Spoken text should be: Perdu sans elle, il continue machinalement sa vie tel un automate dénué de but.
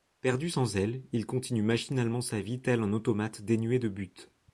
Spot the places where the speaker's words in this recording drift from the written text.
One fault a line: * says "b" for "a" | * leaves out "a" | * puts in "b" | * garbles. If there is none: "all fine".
all fine